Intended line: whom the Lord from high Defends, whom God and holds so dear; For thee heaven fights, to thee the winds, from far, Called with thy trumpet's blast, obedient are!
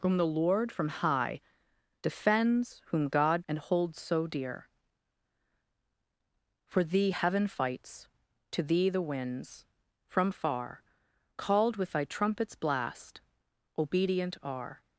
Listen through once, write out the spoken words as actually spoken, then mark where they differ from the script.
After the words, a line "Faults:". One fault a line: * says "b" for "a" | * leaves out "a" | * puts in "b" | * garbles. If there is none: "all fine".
whom the Lord from high Defends, whom God and holds so dear; For thee heaven fights, to thee the winds, from far, Called with thy trumpet's blast, obedient are!
Faults:
all fine